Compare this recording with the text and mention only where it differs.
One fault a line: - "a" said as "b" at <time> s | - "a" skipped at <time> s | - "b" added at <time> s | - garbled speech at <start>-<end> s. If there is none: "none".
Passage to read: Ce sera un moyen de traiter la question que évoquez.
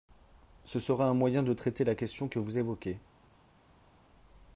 - "vous" added at 2.4 s